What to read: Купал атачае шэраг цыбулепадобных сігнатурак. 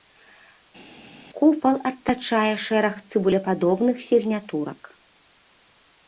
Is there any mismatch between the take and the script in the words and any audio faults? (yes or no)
no